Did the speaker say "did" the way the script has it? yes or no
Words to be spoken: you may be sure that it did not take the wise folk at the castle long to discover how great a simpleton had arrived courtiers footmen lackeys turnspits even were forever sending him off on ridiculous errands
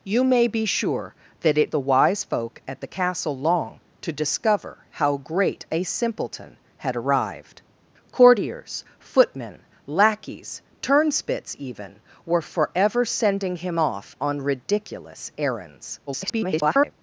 no